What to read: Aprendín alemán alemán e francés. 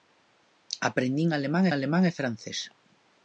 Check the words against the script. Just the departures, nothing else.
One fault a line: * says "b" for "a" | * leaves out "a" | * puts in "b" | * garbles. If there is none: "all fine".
all fine